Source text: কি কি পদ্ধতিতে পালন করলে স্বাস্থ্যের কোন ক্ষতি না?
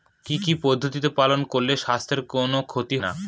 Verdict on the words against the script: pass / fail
pass